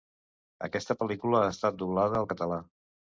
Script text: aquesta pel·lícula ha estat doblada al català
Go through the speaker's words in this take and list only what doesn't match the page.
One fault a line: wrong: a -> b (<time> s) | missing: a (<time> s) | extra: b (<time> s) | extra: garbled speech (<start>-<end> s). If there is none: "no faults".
no faults